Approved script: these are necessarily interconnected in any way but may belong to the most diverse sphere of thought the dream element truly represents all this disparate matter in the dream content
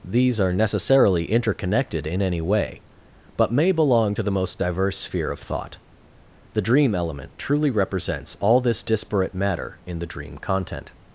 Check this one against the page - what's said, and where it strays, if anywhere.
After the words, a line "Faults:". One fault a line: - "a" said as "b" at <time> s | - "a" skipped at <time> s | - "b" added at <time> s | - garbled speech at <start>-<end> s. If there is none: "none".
these are necessarily interconnected in any way but may belong to the most diverse sphere of thought the dream element truly represents all this disparate matter in the dream content
Faults:
none